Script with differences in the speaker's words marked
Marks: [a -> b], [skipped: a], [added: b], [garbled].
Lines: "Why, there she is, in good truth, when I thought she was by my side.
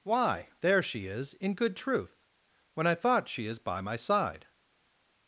"Why, there she is, in good truth, when I thought she [was -> is] by my side.